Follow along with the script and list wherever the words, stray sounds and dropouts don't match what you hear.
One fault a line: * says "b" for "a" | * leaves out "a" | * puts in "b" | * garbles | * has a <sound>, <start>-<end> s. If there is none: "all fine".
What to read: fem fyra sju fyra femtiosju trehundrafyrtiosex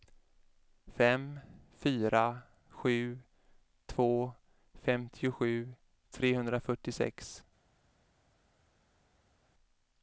* says "två" for "fyra"